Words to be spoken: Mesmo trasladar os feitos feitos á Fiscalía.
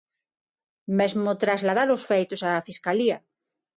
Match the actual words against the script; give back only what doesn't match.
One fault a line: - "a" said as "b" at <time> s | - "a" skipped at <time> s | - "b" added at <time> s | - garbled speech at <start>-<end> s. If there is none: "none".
- "feitos" skipped at 2.4 s